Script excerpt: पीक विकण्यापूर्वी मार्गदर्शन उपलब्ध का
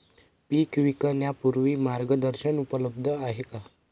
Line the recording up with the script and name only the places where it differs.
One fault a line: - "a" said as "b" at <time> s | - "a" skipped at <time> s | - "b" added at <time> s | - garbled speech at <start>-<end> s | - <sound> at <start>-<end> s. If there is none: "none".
- "आहे" added at 3.1 s